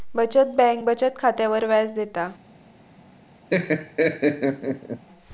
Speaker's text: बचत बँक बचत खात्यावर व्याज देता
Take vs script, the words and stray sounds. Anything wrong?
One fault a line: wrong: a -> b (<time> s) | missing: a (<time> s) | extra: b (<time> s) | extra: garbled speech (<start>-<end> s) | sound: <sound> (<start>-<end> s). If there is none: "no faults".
sound: laugh (3.5-5.0 s)